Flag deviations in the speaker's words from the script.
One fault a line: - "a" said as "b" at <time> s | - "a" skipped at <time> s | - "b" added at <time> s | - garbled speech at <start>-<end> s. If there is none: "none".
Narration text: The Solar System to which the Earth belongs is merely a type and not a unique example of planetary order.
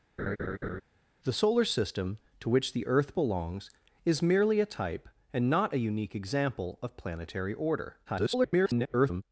- garbled speech at 8.1-9.2 s